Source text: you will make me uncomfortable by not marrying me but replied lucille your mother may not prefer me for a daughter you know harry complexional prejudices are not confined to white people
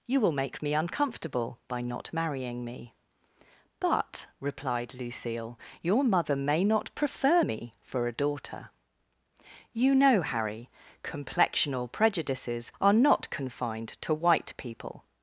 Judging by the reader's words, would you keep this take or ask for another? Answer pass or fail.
pass